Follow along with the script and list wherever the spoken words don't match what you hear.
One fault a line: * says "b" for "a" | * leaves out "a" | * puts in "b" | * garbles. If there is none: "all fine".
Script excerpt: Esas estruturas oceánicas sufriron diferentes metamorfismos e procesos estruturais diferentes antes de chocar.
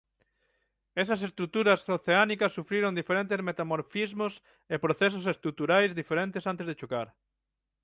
all fine